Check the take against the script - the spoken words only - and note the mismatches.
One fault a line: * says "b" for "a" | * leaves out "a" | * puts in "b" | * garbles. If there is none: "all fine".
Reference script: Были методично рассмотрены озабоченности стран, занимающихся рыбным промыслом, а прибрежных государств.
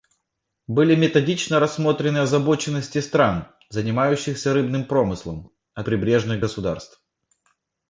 all fine